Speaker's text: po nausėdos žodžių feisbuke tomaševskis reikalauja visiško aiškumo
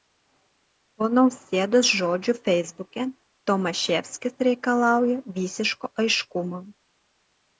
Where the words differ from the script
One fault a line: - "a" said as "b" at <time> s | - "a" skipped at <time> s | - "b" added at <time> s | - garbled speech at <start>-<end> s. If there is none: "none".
none